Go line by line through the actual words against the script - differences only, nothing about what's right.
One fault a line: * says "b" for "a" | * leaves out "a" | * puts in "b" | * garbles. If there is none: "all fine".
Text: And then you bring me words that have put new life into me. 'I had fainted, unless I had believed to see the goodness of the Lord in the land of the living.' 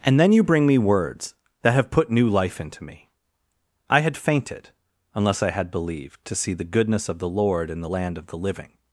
all fine